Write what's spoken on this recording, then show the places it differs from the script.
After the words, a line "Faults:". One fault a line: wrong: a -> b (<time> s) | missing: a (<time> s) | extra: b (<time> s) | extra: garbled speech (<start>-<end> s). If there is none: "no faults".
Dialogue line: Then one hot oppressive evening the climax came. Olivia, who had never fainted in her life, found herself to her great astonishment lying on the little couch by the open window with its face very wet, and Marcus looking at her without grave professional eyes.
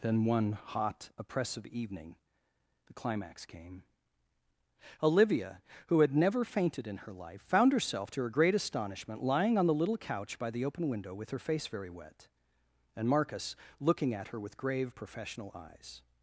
Then one hot oppressive evening the climax came. Olivia, who had never fainted in her life, found herself to her great astonishment lying on the little couch by the open window with her face very wet, and Marcus looking at her with grave professional eyes.
Faults:
wrong: its -> her (11.3 s)
wrong: without -> with (14.4 s)